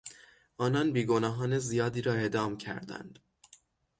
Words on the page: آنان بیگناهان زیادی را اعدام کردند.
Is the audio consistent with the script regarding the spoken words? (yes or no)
yes